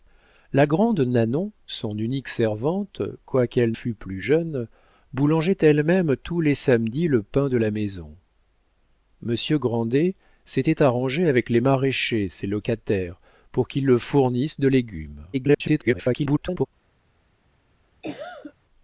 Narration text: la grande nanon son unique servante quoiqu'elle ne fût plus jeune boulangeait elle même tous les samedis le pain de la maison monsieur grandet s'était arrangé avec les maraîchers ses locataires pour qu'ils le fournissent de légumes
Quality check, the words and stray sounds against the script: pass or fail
fail